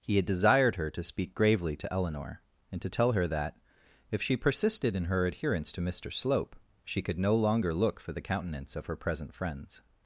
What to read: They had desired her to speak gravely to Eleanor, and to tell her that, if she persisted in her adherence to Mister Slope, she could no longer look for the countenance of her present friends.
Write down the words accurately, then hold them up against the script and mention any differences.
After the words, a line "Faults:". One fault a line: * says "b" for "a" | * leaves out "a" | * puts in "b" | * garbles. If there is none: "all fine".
He had desired her to speak gravely to Eleanor, and to tell her that, if she persisted in her adherence to Mister Slope, she could no longer look for the countenance of her present friends.
Faults:
* says "He" for "They"